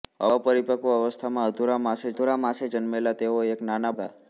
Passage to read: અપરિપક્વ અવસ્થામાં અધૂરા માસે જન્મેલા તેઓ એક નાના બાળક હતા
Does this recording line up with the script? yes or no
no